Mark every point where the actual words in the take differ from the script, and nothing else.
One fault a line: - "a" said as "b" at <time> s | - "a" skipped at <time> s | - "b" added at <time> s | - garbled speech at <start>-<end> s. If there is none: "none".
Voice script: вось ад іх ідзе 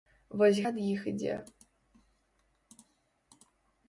none